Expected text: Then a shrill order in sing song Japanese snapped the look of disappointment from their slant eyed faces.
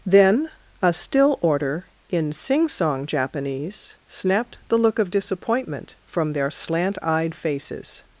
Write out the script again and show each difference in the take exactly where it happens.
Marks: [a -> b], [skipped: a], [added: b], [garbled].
Then a [shrill -> still] order in sing song Japanese snapped the look of disappointment from their slant eyed faces.